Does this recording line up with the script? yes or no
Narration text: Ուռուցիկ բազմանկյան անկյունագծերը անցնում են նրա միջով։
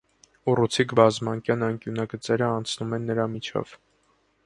yes